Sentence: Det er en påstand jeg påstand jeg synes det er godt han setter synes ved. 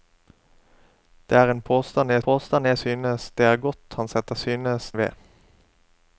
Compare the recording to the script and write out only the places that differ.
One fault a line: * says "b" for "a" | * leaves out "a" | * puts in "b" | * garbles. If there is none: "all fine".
all fine